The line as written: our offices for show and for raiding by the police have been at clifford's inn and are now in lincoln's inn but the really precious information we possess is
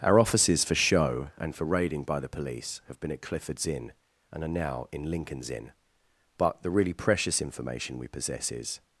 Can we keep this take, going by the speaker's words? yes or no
yes